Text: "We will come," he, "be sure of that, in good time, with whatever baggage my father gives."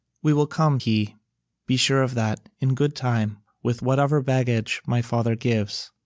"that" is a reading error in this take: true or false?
false